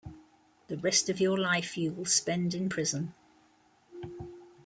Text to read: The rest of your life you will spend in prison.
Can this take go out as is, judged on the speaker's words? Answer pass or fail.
pass